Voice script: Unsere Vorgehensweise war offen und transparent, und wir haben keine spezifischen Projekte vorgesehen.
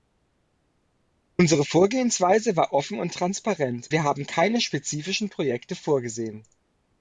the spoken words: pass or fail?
fail